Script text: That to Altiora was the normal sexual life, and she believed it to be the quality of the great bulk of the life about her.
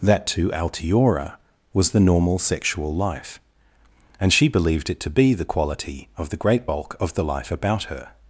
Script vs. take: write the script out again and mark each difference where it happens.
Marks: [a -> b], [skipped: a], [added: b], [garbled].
That to Altiora was the normal sexual life, and she believed it to be the quality of the great bulk of the life about her.